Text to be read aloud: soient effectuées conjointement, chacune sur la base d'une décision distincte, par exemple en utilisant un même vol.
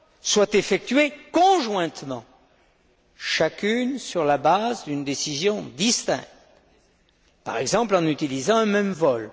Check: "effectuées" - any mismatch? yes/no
no